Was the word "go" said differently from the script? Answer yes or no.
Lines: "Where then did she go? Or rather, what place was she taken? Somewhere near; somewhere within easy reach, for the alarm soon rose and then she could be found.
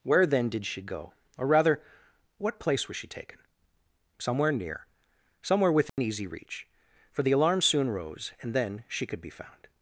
no